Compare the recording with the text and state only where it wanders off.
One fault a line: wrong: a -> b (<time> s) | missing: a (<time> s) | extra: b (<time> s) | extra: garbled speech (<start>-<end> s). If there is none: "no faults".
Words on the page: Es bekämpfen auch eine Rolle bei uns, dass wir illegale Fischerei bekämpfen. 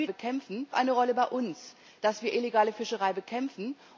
no faults